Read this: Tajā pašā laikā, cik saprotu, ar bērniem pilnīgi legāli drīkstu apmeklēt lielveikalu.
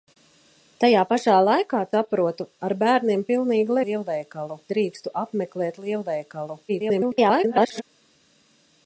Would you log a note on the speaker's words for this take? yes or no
yes